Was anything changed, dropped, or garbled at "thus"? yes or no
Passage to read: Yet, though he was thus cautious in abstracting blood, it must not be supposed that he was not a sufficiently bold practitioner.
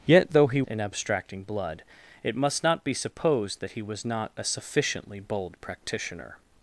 yes